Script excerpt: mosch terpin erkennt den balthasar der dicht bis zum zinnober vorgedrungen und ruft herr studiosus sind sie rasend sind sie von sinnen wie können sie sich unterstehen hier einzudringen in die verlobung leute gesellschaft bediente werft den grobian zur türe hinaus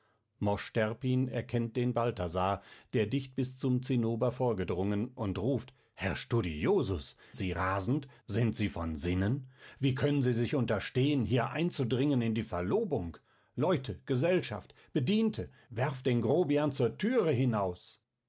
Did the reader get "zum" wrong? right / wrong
right